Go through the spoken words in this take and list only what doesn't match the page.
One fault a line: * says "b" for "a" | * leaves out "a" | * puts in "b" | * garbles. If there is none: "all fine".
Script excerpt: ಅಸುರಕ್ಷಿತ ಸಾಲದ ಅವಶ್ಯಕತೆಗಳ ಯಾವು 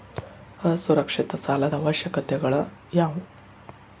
all fine